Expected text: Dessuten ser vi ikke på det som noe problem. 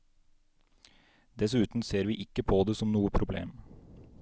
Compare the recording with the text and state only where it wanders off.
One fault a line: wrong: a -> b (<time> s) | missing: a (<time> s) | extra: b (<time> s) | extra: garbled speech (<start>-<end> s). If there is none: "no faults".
no faults